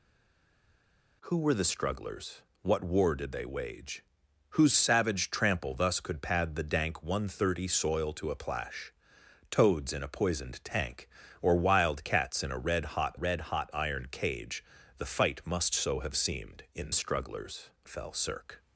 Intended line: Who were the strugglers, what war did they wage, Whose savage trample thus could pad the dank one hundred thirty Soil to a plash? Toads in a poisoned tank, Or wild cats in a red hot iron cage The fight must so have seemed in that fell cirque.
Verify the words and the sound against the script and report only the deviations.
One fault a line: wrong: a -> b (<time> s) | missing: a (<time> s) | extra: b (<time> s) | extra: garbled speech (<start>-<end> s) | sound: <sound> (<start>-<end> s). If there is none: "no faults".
extra: red hot (13.1 s)
wrong: that -> strugglers (16.9 s)